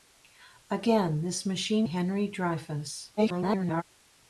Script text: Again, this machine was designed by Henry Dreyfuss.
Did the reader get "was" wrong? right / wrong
wrong